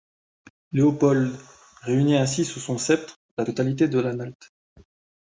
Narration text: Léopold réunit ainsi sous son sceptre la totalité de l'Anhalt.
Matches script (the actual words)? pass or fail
pass